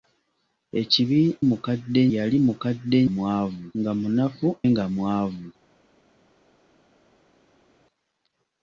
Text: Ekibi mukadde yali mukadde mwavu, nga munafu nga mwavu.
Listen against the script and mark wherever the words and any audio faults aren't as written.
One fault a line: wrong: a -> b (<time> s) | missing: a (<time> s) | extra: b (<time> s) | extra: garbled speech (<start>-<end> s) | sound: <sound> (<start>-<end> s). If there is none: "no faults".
no faults